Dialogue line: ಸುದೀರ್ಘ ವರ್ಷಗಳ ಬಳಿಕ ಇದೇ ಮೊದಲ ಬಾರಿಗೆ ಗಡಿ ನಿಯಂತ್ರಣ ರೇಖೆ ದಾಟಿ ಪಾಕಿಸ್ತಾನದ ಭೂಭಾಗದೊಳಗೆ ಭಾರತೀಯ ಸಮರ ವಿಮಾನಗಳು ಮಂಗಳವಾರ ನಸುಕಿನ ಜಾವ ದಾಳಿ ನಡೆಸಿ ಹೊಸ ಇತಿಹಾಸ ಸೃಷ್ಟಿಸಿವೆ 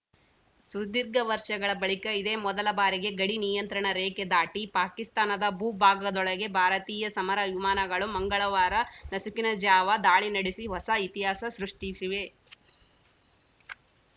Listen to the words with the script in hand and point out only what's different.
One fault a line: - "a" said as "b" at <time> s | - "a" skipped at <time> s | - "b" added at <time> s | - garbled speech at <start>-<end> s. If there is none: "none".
none